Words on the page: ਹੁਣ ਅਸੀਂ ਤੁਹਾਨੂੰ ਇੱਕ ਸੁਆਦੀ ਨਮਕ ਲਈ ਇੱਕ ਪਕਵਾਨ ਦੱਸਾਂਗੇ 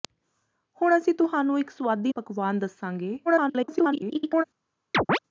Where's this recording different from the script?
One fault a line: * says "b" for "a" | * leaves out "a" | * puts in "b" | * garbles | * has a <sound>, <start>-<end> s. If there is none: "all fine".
* leaves out "ਨਮਕ ਲਈ ਇੱਕ"
* garbles
* has a chirp, 4.9-5.2 s